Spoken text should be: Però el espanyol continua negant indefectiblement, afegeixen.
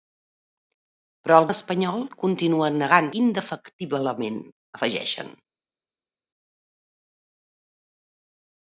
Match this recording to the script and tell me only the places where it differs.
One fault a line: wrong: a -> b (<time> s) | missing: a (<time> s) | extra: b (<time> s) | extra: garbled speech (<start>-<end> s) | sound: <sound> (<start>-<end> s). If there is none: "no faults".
no faults